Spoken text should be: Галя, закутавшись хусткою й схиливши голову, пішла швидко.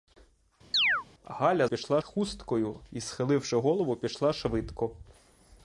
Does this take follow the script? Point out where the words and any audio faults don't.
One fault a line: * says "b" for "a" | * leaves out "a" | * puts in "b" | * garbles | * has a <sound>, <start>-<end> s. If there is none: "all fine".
* has a chirp, 0.7-1.0 s
* says "пішла" for "закутавшись"